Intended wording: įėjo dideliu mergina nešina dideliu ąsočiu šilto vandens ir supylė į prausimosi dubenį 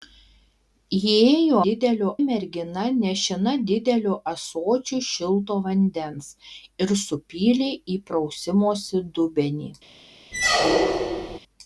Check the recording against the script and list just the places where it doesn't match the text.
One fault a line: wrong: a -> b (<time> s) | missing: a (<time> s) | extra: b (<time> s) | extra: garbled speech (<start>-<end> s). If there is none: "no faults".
no faults